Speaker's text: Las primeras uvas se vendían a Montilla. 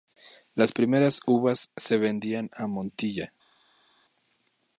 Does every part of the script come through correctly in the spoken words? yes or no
yes